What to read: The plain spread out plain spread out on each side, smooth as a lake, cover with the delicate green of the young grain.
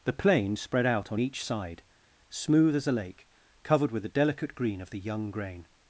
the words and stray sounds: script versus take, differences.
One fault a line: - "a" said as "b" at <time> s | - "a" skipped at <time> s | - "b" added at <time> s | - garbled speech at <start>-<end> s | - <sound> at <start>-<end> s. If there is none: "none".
- "plain spread out" skipped at 1.1 s
- "cover" said as "covered" at 3.6 s